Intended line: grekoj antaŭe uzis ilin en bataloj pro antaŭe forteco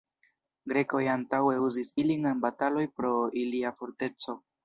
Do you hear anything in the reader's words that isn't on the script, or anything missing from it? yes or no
yes